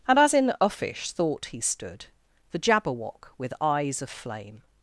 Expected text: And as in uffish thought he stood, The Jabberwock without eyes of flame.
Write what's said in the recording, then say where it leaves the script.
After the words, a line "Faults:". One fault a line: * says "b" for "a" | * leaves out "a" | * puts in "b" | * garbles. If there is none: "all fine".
And as in uffish thought he stood, The Jabberwock with eyes of flame.
Faults:
* says "with" for "without"